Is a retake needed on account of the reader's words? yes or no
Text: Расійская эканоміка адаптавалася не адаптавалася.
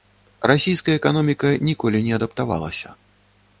yes